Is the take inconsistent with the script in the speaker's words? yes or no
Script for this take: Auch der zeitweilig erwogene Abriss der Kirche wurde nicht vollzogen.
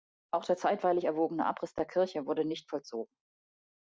no